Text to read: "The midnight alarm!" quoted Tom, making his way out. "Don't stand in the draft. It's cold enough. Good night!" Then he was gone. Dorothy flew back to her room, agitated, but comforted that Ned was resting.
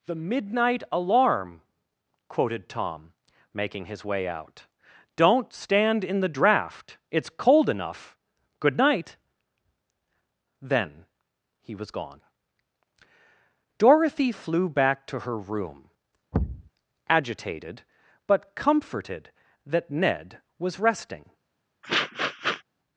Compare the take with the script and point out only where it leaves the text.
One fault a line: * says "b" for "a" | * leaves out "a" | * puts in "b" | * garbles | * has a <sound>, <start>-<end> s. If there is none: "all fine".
* has a thud, 16.3-16.7 s
* has a sniff, 21.8-22.6 s